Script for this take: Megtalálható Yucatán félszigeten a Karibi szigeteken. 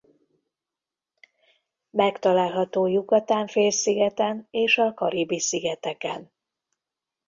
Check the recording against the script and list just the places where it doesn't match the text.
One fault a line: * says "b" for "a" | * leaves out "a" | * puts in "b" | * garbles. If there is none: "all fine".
* puts in "és"